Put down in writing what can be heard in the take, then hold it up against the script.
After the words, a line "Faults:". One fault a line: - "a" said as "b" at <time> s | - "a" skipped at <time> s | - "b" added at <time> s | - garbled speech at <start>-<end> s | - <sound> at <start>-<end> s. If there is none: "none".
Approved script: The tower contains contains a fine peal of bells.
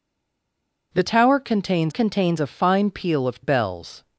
The tower contains contains a fine peal of bells.
Faults:
none